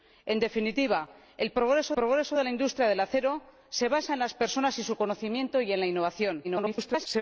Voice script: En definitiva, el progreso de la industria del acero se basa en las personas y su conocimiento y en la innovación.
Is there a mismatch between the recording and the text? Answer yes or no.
yes